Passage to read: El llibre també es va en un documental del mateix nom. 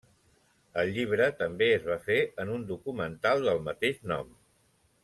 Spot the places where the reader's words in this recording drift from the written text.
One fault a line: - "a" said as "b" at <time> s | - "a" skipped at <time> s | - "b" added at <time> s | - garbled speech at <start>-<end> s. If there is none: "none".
- "fer" added at 2.1 s